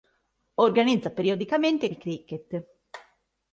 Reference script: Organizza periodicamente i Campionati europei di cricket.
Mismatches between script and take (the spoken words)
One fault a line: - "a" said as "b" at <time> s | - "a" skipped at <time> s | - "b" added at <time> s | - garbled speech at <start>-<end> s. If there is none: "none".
- "Campionati europei" skipped at 1.9 s